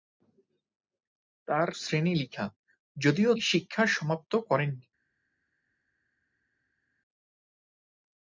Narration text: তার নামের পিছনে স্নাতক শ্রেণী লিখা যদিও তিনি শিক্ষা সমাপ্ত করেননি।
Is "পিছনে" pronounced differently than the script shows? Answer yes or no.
yes